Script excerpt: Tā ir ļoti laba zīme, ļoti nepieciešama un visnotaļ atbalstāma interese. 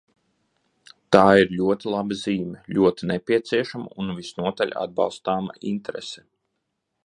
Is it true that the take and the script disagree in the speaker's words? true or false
false